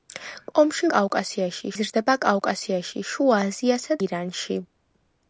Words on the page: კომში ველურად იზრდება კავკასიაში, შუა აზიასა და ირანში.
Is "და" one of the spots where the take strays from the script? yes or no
yes